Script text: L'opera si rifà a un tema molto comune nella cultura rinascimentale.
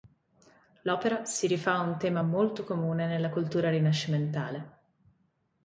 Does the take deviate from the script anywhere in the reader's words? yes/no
no